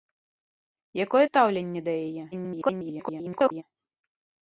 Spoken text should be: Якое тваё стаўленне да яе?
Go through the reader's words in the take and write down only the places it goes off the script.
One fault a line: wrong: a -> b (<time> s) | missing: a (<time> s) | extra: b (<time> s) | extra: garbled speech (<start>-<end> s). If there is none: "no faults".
missing: тваё (1.2 s)
extra: garbled speech (2.3-3.6 s)